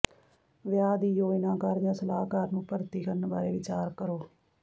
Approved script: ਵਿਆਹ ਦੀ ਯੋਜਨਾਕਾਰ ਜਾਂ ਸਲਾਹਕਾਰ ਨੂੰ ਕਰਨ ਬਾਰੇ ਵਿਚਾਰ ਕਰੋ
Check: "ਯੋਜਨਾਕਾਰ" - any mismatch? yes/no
no